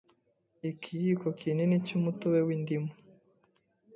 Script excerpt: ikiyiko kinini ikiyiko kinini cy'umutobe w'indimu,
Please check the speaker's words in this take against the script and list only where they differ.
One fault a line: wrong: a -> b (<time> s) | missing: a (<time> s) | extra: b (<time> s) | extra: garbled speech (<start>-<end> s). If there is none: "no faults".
missing: ikiyiko kinini (1.7 s)